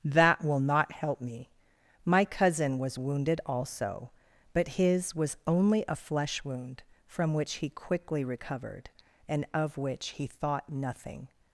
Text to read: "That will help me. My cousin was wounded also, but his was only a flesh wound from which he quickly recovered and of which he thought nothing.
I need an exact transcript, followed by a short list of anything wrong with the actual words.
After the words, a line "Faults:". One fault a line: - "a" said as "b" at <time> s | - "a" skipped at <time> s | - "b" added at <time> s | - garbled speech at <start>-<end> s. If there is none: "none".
"That will not help me. My cousin was wounded also, but his was only a flesh wound from which he quickly recovered and of which he thought nothing.
Faults:
- "not" added at 0.6 s